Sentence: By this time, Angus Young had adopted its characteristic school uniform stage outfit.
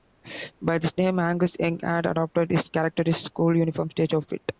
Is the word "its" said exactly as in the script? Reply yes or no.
no